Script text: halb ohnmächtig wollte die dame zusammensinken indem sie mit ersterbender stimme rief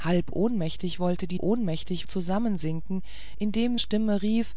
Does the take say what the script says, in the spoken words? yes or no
no